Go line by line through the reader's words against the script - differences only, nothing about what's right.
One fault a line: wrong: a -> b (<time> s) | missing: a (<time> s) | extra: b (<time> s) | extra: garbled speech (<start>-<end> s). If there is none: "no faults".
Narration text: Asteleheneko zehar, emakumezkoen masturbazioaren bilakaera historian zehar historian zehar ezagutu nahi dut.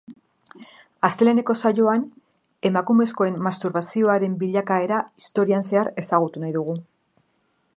wrong: zehar -> saioan (1.6 s)
missing: historian zehar (5.9 s)
wrong: dut -> dugu (6.6 s)